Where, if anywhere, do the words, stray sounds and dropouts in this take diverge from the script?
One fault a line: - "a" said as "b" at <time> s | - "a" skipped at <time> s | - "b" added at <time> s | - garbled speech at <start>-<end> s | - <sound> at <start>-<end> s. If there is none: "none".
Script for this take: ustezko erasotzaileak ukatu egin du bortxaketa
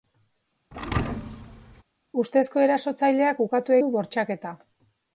- thud at 0.7-1.8 s
- "egin" skipped at 3.8 s